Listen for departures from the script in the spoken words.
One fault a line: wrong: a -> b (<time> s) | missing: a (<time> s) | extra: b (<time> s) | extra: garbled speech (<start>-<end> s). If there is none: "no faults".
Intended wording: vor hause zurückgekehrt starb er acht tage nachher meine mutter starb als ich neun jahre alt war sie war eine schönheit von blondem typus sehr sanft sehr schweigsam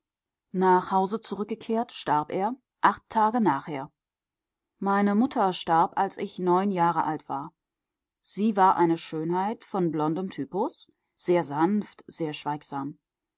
wrong: vor -> nach (0.5 s)